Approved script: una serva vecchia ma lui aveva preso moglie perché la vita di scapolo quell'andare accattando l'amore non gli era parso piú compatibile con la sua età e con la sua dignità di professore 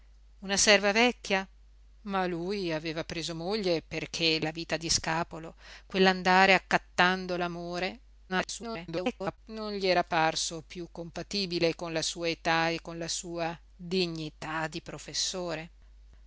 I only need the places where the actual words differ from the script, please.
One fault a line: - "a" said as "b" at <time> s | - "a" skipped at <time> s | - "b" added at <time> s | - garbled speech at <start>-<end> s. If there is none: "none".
- garbled speech at 8.3-9.4 s